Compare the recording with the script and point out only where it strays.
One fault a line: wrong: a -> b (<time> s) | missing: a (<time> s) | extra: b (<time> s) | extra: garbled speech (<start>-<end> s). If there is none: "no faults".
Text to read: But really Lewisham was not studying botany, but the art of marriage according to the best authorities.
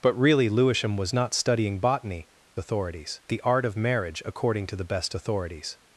wrong: but -> authorities (2.6 s)